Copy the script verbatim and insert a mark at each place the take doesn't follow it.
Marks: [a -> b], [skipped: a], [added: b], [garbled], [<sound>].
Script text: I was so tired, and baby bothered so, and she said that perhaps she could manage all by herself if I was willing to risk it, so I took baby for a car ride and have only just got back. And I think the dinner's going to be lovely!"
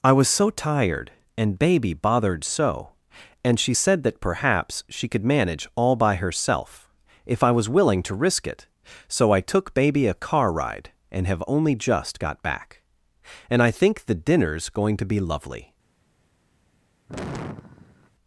I was so tired, and baby bothered so, and she said that perhaps she could manage all by herself if I was willing to risk it, so I took baby [skipped: for] a car ride and have only just got back. And I think the dinner's going to be lovely!" [sigh]